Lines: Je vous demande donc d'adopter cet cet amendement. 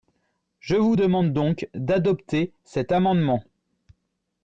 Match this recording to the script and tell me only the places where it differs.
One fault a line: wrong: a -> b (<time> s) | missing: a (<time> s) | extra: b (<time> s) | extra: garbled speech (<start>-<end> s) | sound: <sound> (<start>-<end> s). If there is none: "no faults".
missing: cet (2.9 s)